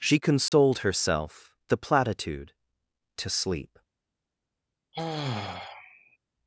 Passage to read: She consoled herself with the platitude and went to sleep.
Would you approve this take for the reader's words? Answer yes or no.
no